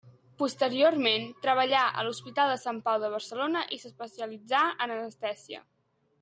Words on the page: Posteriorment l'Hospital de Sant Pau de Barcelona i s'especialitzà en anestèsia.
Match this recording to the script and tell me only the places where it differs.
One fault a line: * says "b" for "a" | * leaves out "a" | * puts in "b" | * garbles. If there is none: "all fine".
* puts in "treballà a"